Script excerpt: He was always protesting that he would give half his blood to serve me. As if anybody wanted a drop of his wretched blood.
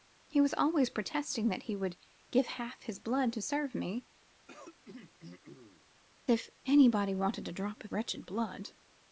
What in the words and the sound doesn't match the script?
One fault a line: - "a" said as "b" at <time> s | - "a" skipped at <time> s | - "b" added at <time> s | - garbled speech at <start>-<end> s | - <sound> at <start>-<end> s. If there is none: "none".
- "As" skipped at 4.1 s
- throat clearing at 4.5-5.8 s
- "his" skipped at 7.9 s